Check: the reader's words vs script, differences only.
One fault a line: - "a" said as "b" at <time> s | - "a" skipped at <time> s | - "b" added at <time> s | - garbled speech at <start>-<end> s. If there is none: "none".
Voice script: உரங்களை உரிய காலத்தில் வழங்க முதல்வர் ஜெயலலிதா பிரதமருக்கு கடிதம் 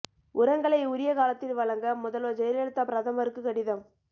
none